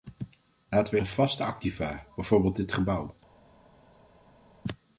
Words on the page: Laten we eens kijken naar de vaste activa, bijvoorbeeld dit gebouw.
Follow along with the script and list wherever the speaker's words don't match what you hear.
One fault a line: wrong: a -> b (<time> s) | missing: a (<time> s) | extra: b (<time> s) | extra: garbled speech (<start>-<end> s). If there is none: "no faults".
missing: eens kijken naar (1.0 s)